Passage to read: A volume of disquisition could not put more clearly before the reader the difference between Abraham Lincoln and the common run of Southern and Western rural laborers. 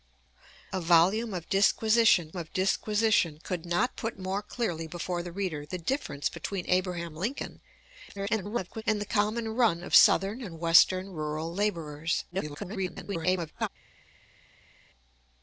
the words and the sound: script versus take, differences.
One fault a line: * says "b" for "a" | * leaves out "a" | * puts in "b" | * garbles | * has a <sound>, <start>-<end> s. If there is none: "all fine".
* puts in "of disquisition"
* garbles
* garbles